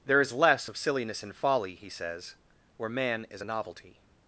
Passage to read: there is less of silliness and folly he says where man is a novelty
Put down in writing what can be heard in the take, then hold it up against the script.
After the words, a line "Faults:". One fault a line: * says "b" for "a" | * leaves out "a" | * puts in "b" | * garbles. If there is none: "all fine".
there is less of silliness and folly he says where man is a novelty
Faults:
all fine